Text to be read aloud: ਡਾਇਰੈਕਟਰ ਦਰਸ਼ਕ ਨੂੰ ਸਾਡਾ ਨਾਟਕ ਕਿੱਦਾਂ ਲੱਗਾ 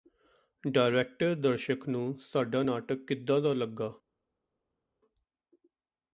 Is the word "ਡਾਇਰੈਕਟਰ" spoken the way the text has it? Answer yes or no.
yes